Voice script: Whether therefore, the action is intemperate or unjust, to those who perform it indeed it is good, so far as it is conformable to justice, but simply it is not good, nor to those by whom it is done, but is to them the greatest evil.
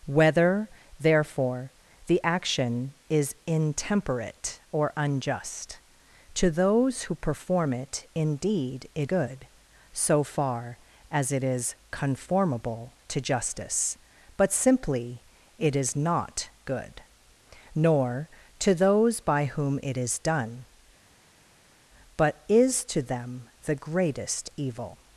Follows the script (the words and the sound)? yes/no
no